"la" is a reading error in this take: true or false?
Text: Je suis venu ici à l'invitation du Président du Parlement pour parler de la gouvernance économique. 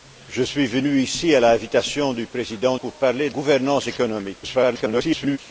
true